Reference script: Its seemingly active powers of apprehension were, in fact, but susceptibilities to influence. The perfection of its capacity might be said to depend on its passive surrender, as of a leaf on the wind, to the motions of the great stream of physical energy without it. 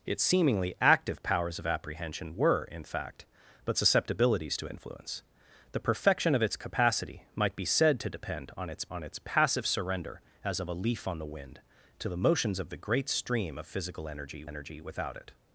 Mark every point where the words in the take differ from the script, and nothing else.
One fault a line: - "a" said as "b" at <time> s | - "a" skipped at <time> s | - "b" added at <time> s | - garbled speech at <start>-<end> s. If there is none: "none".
- "on its" added at 8.9 s
- "energy" added at 14.5 s